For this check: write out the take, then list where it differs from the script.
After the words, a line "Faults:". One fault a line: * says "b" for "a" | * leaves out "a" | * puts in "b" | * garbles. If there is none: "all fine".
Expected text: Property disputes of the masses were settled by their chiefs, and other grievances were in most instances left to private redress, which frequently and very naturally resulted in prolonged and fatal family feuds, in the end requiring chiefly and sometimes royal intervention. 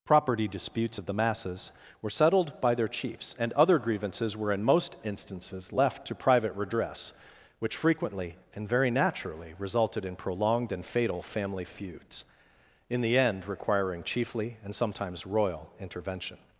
Property disputes of the masses were settled by their chiefs, and other grievances were in most instances left to private redress, which frequently and very naturally resulted in prolonged and fatal family feuds, in the end requiring chiefly and sometimes royal intervention.
Faults:
all fine